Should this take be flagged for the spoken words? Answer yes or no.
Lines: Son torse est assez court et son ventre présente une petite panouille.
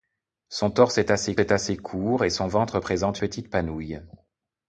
yes